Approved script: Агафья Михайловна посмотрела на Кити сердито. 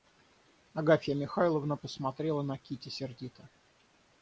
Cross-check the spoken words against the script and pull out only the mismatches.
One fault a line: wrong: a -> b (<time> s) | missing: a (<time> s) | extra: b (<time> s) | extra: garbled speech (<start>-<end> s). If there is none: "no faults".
no faults